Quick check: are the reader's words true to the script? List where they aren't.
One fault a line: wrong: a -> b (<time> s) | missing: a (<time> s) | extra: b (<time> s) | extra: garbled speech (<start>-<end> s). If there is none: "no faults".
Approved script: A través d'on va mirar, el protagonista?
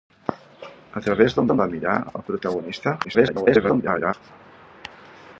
extra: d'on (1.5 s)
extra: garbled speech (3.0-4.1 s)